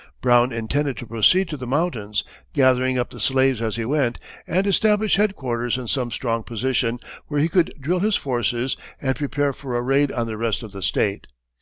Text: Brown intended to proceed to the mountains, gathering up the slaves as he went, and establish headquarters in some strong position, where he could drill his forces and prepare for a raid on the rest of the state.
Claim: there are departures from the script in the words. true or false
false